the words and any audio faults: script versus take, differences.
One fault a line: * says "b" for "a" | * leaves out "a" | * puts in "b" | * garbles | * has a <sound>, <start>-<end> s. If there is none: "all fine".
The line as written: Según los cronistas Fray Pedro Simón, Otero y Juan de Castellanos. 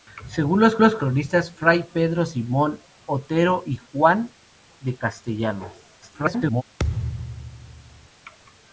* puts in "los"
* garbles
* has a thud, 6.8-8.1 s